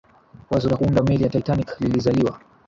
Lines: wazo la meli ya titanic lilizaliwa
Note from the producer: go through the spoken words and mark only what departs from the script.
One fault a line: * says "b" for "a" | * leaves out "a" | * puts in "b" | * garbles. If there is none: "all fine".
* puts in "kuunda"